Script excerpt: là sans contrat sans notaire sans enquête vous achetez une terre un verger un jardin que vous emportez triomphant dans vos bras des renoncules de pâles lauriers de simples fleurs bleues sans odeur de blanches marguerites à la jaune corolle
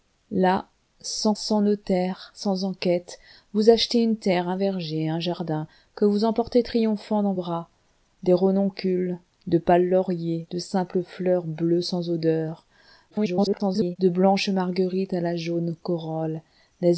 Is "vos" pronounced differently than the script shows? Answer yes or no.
yes